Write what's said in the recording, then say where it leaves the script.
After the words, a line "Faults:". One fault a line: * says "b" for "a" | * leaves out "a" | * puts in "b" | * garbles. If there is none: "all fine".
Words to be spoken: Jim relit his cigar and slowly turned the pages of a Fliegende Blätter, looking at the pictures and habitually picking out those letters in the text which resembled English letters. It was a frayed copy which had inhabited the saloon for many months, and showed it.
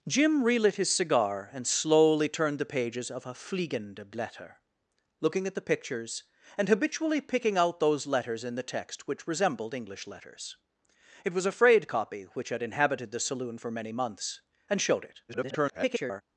Jim relit his cigar and slowly turned the pages of a Fliegende Blätter, looking at the pictures and habitually picking out those letters in the text which resembled English letters. It was a frayed copy which had inhabited the saloon for many months, and showed it. [garbled]
Faults:
* garbles